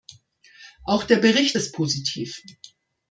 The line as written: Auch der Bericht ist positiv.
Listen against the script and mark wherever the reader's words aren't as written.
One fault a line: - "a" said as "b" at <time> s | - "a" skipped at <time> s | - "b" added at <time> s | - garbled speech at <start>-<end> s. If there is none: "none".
none